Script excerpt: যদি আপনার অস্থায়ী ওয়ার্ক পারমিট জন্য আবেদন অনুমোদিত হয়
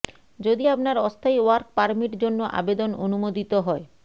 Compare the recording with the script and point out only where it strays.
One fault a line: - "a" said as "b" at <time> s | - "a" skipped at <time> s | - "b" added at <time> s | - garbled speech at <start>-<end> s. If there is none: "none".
none